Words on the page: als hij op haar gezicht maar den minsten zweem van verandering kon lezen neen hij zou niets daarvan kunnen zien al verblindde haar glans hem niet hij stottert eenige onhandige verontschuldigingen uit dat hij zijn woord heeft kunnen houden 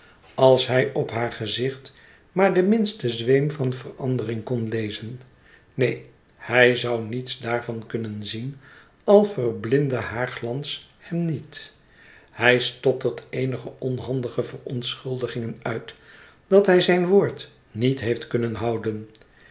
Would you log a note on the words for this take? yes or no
yes